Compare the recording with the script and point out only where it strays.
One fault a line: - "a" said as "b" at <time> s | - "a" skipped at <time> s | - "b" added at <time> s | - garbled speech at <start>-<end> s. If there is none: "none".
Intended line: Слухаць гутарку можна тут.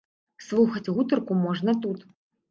none